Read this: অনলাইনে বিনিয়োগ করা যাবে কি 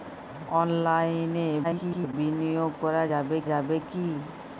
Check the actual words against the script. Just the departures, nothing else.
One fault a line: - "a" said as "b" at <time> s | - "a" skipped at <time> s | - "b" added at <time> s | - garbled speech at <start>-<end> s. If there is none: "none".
- garbled speech at 1.6-2.1 s
- "যাবে" added at 3.5 s